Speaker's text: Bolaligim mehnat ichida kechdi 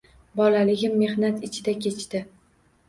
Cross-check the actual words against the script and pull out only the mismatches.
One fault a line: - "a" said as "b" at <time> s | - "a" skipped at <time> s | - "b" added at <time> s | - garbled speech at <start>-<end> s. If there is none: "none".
none